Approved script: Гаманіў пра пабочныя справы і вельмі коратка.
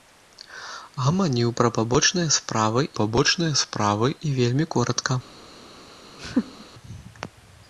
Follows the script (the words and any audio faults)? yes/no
no